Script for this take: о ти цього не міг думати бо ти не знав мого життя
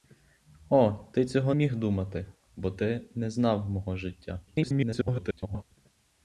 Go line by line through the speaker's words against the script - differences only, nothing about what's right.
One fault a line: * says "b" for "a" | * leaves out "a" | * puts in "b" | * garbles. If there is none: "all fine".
* leaves out "не"
* garbles